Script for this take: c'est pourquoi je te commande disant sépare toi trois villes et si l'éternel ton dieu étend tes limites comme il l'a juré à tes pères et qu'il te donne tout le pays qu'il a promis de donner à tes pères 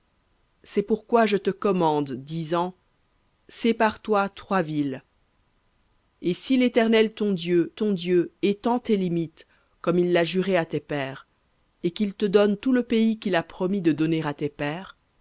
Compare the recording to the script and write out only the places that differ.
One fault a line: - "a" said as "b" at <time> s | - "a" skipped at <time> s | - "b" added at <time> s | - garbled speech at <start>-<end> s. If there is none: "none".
- "ton dieu" added at 7.7 s